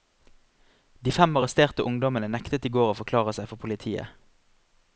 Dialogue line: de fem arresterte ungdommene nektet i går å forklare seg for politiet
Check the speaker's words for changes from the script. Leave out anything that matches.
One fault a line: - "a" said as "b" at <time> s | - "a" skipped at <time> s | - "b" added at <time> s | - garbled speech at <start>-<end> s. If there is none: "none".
none